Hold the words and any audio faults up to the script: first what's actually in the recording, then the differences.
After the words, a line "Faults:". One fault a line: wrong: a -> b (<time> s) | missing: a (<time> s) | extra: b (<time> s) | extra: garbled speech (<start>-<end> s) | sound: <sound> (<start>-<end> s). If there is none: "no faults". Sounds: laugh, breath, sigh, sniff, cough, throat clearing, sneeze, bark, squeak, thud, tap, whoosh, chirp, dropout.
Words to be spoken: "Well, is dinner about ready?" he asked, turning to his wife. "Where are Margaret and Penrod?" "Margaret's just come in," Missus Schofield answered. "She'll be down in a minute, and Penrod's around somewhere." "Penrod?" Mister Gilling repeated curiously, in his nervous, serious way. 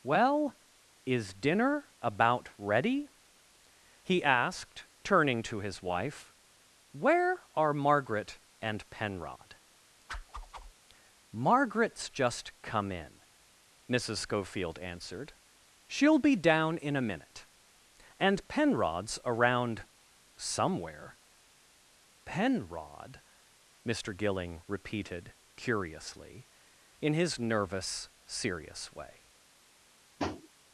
"Well, is dinner about ready?" he asked, turning to his wife. "Where are Margaret and Penrod?" "Margaret's just come in," Missus Schofield answered. "She'll be down in a minute, and Penrod's around somewhere." "Penrod?" Mister Gilling repeated curiously, in his nervous, serious way.
Faults:
sound: whoosh (10.1-10.7 s)
sound: tap (30.2-30.5 s)